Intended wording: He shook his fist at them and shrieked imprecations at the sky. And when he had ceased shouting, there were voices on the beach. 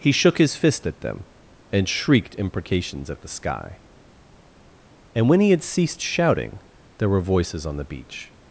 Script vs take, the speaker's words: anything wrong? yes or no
no